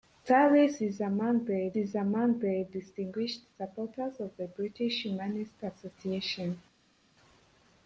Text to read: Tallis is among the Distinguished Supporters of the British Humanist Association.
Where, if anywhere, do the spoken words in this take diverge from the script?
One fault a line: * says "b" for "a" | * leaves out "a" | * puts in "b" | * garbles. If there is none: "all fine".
* puts in "is among the"